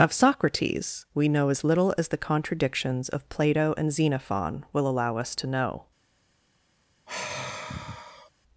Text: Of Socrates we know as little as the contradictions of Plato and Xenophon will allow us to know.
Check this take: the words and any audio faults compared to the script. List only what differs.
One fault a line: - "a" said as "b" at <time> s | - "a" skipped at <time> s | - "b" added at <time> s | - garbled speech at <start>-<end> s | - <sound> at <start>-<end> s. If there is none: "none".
- sigh at 7.1-8.3 s